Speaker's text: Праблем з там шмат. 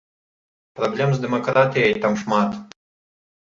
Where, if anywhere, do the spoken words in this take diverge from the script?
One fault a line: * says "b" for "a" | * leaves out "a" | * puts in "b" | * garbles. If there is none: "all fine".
* puts in "дэмакратыяй"